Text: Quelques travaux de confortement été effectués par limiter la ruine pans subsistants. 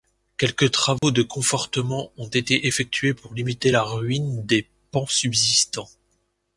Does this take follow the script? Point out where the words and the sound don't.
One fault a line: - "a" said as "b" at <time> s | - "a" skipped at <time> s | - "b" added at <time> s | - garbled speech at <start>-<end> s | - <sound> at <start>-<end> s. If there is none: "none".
- dropout at 1.0-1.0 s
- "ont" added at 2.2 s
- "par" said as "pour" at 3.1 s
- "des" added at 4.4 s